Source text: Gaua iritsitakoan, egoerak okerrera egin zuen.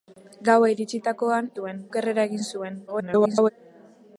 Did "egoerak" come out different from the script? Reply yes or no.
yes